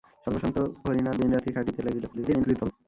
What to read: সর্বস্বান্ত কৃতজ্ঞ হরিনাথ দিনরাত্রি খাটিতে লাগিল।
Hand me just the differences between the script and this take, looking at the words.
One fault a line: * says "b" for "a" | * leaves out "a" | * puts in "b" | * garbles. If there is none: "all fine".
* leaves out "কৃতজ্ঞ"
* garbles